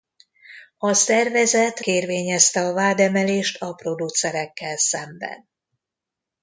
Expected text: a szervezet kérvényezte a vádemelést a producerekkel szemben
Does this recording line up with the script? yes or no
yes